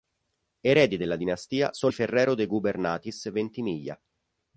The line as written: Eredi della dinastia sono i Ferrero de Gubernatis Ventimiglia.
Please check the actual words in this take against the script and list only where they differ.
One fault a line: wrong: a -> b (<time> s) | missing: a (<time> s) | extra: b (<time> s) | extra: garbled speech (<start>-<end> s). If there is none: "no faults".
no faults